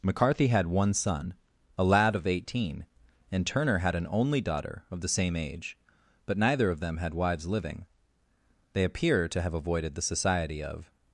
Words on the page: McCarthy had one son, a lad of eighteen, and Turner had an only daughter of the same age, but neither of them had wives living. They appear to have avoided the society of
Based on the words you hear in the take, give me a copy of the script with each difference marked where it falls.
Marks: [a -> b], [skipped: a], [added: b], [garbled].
McCarthy had one son, a lad of eighteen, and Turner had an only daughter of the same age, but neither of them had wives living. They appear to have avoided the society of